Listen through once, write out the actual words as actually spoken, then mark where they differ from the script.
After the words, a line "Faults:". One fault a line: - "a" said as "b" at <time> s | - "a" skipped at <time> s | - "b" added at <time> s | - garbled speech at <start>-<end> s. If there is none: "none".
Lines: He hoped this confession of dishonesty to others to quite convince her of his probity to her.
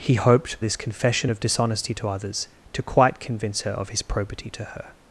He hoped this confession of dishonesty to others to quite convince her of his probity to her.
Faults:
none